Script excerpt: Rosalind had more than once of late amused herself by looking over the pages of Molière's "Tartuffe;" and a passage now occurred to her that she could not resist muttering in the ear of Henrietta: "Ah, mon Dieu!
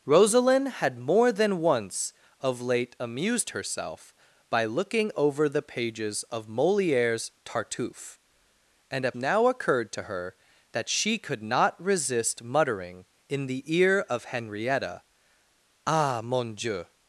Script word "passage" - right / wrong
wrong